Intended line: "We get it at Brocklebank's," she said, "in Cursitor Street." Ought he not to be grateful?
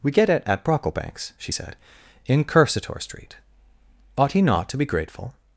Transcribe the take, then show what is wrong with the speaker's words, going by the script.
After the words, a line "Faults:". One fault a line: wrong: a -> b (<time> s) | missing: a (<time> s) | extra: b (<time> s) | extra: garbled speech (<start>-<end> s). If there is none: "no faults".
"We get it at Brocklebank's," she said, "in Cursitor Street." Ought he not to be grateful?
Faults:
no faults